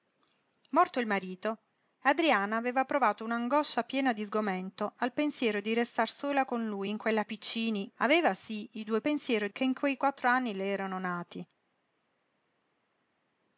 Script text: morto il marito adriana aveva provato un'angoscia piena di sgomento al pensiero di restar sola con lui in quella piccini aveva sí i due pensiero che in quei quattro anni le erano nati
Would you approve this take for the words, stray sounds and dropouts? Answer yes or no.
yes